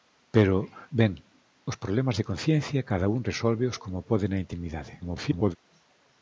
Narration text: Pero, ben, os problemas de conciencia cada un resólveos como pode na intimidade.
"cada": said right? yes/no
yes